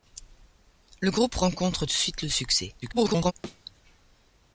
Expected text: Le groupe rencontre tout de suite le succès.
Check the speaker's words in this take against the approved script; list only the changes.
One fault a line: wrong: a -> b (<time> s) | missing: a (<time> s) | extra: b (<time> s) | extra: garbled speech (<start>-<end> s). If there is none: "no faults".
missing: tout (1.9 s)
extra: garbled speech (2.8-3.3 s)